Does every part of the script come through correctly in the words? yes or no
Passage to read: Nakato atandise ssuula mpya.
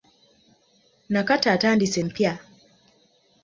no